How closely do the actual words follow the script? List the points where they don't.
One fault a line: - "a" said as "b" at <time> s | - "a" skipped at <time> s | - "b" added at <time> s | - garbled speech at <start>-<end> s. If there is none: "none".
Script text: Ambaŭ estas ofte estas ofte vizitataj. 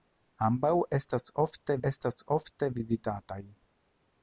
none